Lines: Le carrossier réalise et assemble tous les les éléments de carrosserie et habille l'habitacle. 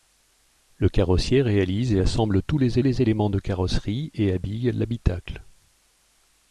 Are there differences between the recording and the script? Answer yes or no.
no